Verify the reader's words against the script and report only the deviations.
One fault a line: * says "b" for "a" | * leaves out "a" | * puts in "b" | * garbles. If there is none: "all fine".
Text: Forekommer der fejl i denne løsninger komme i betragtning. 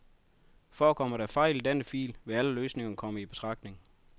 * puts in "fil vil alle"